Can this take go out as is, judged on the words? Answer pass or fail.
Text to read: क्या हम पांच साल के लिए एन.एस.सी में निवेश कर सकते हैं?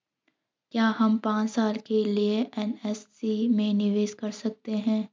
pass